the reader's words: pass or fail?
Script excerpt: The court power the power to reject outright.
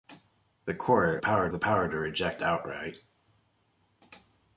pass